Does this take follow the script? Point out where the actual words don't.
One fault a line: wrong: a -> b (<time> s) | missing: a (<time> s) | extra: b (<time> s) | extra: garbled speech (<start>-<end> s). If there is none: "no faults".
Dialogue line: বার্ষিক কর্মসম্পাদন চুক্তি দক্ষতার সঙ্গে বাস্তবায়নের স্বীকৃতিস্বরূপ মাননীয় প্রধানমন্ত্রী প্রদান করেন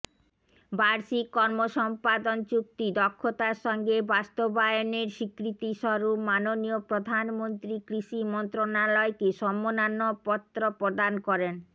extra: কৃষি মন্ত্রণালয়কে সম্মাননাপত্র (7.9 s)